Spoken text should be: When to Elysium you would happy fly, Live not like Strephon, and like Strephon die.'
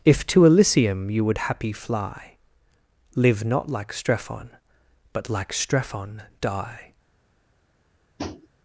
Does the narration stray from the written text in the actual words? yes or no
yes